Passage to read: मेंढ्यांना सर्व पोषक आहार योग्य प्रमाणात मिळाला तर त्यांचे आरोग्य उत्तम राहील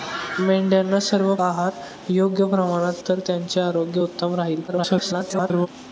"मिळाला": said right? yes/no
no